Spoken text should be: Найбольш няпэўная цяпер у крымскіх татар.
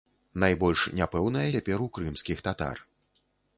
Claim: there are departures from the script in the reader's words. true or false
false